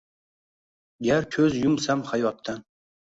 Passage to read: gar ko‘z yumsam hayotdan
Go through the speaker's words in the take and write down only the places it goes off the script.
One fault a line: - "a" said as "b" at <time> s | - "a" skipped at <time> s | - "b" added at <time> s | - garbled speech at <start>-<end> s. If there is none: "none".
none